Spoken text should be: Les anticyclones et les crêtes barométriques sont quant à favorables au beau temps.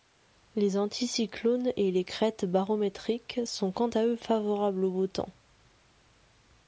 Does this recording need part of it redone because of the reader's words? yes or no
yes